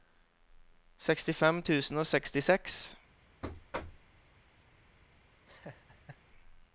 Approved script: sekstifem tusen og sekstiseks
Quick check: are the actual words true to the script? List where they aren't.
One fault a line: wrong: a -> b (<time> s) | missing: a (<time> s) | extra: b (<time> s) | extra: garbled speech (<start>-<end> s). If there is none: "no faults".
no faults